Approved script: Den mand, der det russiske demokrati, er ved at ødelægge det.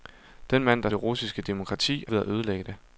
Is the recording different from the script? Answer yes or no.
no